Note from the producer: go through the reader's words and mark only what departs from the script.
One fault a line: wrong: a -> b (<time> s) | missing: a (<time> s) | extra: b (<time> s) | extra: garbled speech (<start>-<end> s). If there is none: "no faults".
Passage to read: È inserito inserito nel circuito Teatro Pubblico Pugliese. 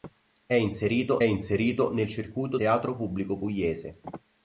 no faults